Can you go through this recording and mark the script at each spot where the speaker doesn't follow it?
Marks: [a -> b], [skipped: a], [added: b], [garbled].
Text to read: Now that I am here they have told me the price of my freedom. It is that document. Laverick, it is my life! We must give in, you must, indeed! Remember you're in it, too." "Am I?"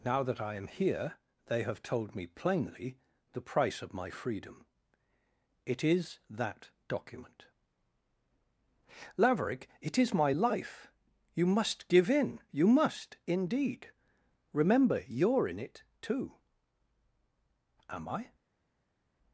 Now that I am here they have told me [added: plainly] the price of my freedom. It is that document. Laverick, it is my life! [We -> You] must give in, you must, indeed! Remember you're in it, too." "Am I?"